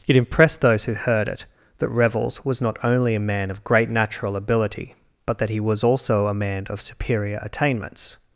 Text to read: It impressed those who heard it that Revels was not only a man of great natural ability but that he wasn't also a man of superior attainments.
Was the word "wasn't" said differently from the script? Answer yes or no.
yes